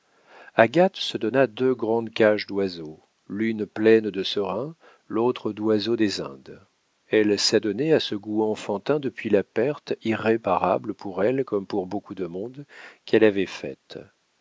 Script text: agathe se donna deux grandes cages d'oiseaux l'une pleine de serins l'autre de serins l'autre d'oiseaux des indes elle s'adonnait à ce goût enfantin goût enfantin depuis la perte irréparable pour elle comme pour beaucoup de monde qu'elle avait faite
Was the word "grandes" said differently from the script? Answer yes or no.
no